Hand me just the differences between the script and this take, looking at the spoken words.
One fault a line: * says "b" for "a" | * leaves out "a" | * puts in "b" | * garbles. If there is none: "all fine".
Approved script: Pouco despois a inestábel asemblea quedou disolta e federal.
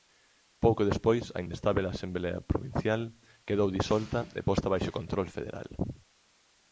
* puts in "provincial"
* puts in "posta baixo control"